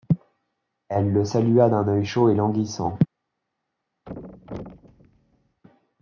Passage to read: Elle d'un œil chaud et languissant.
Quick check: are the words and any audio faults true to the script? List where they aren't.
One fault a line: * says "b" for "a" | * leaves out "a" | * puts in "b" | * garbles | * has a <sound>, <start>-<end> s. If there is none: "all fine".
* puts in "le salua"
* has a thud, 4.1-5.6 s